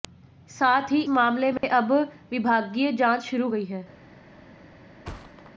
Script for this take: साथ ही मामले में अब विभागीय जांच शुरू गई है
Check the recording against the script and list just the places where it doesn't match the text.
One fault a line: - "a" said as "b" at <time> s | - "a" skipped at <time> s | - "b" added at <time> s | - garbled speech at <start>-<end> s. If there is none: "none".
none